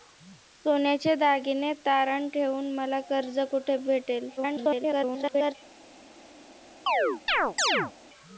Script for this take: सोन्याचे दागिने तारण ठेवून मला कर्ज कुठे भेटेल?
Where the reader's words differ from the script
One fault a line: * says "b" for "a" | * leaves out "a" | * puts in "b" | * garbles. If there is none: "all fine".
* garbles